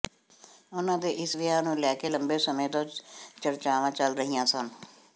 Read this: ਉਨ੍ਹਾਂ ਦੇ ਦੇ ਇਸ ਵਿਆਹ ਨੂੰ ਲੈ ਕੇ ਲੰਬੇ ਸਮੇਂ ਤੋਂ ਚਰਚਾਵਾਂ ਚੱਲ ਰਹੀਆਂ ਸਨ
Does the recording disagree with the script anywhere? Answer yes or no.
yes